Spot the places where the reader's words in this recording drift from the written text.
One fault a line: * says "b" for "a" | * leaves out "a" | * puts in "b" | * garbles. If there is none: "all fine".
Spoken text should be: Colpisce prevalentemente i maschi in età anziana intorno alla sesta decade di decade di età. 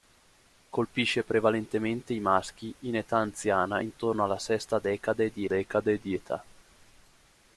all fine